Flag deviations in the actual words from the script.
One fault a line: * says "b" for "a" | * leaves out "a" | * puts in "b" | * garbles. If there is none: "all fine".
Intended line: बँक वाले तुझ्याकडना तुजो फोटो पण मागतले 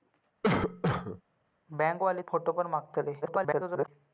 * leaves out "तुझ्याकडना तुजो"
* garbles